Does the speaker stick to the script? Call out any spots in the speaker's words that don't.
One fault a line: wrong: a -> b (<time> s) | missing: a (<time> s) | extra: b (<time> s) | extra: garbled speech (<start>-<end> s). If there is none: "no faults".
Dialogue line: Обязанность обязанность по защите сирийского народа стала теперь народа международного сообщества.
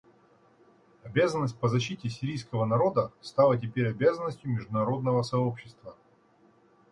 missing: обязанность (1.6 s)
wrong: народа -> обязанностью (3.9 s)